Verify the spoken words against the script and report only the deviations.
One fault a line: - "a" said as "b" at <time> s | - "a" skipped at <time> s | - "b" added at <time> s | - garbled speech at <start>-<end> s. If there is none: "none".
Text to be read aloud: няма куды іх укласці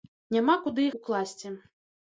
- "іх" skipped at 0.9 s